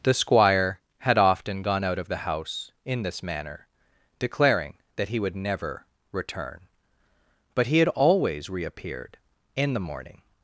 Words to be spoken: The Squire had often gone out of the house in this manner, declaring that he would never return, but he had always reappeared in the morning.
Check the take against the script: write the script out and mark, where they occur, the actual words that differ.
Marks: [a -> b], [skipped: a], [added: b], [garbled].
The Squire had often gone out of the house in this manner, declaring that he would never return, but he had always reappeared in the morning.